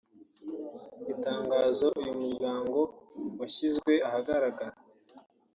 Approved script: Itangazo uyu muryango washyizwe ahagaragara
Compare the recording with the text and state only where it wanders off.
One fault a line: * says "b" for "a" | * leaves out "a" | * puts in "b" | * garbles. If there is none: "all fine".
all fine